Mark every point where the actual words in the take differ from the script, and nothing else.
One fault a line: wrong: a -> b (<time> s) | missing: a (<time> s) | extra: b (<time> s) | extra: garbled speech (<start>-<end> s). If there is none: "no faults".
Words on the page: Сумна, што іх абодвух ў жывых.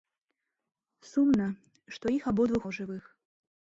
no faults